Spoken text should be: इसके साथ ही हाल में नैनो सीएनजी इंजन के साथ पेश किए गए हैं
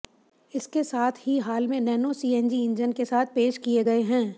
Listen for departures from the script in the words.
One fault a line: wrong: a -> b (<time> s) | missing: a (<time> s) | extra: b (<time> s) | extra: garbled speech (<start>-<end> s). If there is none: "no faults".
no faults